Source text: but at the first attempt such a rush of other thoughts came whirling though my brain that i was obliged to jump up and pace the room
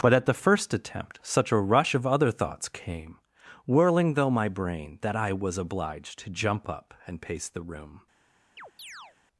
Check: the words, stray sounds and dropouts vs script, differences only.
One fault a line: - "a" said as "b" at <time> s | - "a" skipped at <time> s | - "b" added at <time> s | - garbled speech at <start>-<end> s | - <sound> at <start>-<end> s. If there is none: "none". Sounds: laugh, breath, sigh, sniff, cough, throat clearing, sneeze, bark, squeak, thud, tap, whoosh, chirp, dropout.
- chirp at 8.6-9.2 s